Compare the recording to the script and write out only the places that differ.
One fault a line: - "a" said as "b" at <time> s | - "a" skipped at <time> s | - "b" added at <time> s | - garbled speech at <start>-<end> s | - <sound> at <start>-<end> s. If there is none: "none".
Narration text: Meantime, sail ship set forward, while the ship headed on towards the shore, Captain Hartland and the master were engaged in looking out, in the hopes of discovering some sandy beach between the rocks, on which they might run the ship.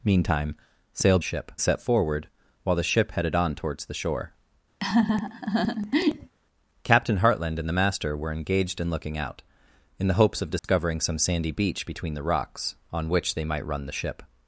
- laugh at 4.8-6.3 s
- dropout at 10.6-10.6 s